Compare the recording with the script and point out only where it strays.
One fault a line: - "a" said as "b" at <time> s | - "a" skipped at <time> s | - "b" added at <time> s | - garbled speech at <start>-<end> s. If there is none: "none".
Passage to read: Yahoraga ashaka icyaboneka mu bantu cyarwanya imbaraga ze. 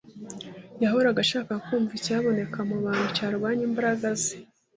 - "kumva" added at 1.7 s